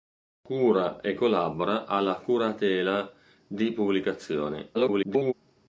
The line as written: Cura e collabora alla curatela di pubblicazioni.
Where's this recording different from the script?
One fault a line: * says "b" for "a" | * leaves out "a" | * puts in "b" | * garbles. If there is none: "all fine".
* garbles